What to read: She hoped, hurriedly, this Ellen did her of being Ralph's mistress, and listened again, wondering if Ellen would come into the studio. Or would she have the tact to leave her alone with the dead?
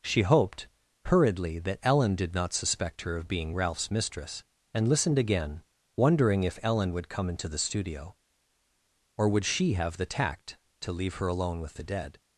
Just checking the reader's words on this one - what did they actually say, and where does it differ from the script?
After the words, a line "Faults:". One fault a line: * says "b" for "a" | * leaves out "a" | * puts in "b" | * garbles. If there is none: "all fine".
She hoped, hurriedly, that Ellen did not suspect her of being Ralph's mistress, and listened again, wondering if Ellen would come into the studio. Or would she have the tact to leave her alone with the dead?
Faults:
* says "that" for "this"
* puts in "not suspect"